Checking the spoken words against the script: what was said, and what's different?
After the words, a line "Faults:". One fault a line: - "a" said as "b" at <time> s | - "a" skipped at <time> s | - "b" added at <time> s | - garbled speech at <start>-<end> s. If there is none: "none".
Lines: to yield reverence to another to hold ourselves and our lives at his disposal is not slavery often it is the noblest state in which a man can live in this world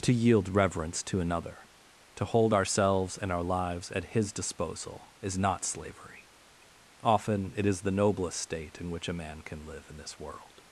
to yield reverence to another to hold ourselves and our lives at his disposal is not slavery often it is the noblest state in which a man can live in this world
Faults:
none